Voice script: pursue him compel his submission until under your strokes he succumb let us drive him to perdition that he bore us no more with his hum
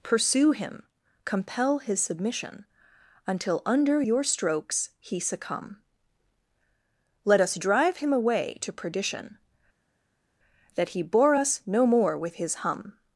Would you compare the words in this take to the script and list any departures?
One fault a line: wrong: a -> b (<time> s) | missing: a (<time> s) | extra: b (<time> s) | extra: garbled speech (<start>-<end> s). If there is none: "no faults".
extra: away (8.1 s)